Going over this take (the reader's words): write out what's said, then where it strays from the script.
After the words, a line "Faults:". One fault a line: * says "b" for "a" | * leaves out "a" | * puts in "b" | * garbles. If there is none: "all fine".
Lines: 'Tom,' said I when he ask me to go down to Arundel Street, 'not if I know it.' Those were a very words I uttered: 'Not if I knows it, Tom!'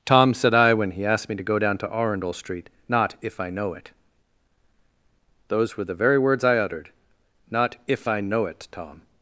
'Tom,' said I when he asked me to go down to Arundel Street, 'not if I know it.' Those were the very words I uttered: 'Not if I know it, Tom!'
Faults:
* says "asked" for "ask"
* says "the" for "a"
* says "know" for "knows"